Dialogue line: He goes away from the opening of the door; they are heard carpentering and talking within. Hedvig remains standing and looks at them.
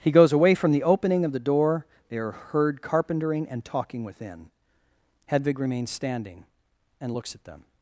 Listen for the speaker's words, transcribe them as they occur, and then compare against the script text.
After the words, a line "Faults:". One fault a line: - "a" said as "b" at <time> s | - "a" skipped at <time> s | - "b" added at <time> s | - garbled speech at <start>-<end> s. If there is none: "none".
He goes away from the opening of the door; they are heard carpentering and talking within. Hedvig remains standing and looks at them.
Faults:
none